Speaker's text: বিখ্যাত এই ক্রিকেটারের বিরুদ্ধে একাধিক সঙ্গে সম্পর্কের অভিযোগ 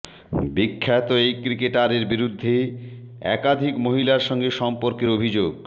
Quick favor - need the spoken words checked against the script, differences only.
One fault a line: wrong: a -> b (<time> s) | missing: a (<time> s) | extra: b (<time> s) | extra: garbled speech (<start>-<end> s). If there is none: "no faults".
extra: মহিলার (3.9 s)